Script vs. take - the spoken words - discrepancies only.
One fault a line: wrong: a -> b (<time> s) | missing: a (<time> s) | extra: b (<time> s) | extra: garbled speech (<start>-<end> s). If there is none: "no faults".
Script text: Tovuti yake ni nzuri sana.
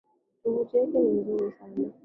no faults